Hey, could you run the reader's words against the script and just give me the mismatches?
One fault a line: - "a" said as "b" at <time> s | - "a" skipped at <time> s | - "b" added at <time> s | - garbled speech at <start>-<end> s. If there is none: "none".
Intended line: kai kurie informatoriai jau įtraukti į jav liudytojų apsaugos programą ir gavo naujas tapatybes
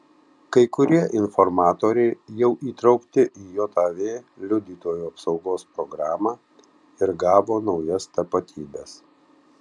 none